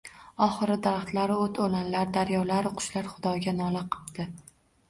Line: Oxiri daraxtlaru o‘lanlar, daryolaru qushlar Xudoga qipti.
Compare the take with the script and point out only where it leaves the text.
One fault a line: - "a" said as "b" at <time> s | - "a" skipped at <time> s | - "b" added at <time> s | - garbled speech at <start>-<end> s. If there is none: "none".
- "o‘t" added at 1.4 s
- "nola" added at 3.6 s